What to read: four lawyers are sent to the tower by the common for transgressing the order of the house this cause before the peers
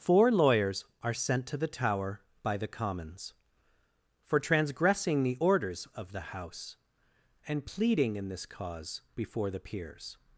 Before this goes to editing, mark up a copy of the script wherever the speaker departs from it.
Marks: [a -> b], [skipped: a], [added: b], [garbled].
four lawyers are sent to the tower by the [common -> commons] for transgressing the [order -> orders] of the house [added: and pleading in] this cause before the peers